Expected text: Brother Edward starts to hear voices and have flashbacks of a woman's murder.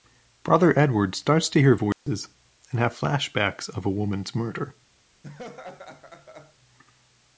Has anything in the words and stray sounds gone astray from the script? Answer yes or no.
yes